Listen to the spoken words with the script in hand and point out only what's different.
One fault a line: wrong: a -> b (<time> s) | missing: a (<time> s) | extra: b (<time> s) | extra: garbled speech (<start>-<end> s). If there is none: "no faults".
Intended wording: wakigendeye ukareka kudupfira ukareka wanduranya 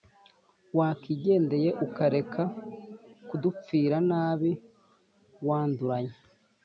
wrong: ukareka -> nabi (4.1 s)